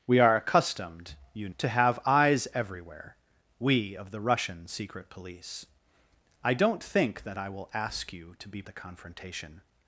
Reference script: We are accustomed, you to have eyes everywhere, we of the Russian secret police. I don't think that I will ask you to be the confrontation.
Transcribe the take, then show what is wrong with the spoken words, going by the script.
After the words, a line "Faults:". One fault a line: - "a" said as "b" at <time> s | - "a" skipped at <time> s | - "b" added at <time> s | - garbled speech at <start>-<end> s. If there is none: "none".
We are accustomed, you to have eyes everywhere, we of the Russian secret police. I don't think that I will ask you to be the confrontation.
Faults:
none